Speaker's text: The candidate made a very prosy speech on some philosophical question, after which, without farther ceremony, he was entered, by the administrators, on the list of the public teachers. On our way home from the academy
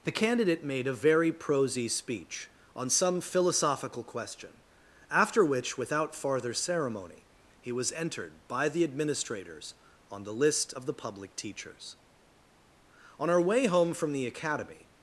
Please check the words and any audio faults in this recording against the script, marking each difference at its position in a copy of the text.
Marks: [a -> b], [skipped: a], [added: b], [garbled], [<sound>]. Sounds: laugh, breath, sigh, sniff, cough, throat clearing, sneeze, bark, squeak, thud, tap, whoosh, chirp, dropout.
The candidate made a very prosy speech on some philosophical question, after which, without farther ceremony, he was entered, by the administrators, on the list of the public teachers. On our way home from the academy